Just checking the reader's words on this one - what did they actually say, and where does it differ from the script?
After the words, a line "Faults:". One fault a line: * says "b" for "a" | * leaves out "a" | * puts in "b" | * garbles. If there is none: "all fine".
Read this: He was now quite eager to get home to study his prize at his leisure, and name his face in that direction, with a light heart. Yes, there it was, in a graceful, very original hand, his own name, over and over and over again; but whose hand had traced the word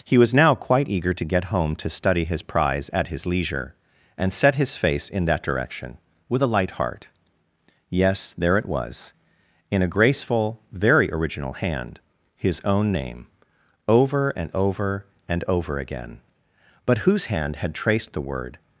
He was now quite eager to get home to study his prize at his leisure, and set his face in that direction, with a light heart. Yes, there it was, in a graceful, very original hand, his own name, over and over and over again; but whose hand had traced the word
Faults:
* says "set" for "name"